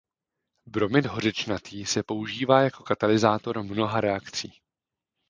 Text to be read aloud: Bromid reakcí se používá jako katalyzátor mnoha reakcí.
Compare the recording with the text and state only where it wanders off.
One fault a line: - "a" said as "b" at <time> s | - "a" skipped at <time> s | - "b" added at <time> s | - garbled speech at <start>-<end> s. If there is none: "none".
- "reakcí" said as "hořečnatý" at 1.1 s